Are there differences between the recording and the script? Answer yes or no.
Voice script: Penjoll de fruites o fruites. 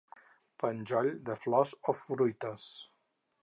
yes